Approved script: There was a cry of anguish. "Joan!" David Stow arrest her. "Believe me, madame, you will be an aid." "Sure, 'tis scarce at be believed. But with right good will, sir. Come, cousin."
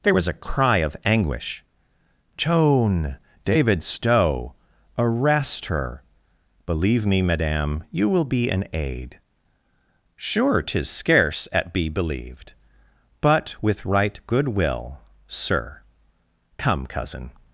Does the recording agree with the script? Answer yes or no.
yes